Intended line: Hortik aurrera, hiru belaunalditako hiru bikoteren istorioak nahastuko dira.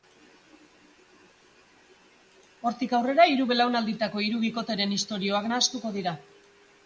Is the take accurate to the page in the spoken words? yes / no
yes